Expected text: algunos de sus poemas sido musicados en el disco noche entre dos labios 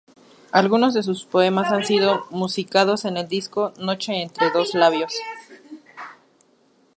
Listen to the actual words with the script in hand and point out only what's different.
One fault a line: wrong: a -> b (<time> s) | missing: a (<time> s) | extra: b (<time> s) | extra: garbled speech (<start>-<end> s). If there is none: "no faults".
extra: han (1.7 s)